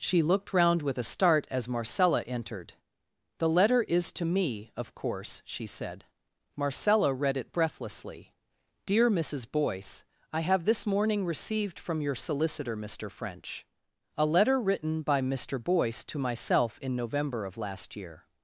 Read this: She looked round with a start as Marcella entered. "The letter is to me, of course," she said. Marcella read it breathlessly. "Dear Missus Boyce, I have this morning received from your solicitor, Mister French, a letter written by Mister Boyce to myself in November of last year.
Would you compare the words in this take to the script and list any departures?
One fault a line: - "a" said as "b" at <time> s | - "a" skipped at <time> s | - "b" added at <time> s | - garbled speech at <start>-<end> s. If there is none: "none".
none